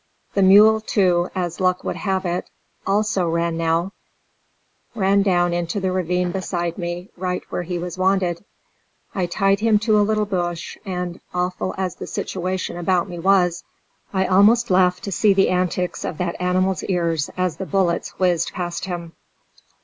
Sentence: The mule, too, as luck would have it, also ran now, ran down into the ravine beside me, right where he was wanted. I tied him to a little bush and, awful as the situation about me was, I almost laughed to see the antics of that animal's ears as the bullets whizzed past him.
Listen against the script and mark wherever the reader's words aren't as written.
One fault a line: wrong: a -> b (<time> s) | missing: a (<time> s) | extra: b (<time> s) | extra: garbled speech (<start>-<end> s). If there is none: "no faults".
no faults